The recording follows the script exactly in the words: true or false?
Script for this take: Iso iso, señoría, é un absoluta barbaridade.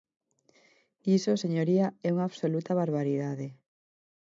false